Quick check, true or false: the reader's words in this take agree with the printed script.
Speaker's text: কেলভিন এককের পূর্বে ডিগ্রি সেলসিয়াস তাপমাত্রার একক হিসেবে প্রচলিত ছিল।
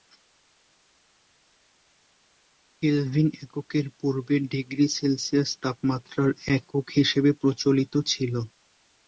true